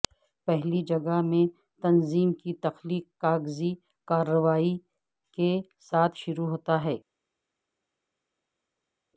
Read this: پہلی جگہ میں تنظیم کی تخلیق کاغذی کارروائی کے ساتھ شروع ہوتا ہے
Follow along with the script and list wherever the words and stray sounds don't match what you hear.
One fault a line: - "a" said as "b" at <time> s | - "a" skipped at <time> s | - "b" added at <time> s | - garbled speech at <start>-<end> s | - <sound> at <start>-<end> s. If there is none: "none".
none